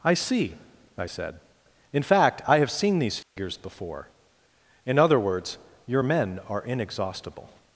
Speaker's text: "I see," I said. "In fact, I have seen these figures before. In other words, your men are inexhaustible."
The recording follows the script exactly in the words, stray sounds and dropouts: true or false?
false